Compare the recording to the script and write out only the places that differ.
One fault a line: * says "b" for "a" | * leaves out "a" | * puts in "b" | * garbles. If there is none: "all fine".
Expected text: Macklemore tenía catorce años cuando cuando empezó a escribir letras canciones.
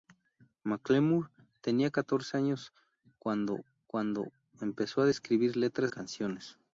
all fine